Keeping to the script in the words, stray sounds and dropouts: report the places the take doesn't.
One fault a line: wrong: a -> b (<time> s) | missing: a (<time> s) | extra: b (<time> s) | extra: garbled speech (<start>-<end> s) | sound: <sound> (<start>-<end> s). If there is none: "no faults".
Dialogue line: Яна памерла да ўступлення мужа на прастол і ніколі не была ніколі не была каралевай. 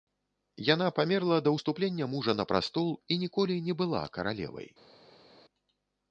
missing: ніколі не была (4.1 s)